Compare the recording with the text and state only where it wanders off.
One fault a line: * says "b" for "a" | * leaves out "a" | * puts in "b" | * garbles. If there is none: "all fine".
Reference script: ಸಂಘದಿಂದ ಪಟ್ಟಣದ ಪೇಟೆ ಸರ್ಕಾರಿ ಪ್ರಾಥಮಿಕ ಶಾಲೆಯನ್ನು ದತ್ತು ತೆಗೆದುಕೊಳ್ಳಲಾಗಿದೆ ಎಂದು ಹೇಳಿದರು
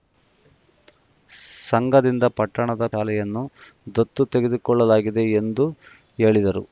* leaves out "ಪೇಟೆ ಸರ್ಕಾರಿ ಪ್ರಾಥಮಿಕ"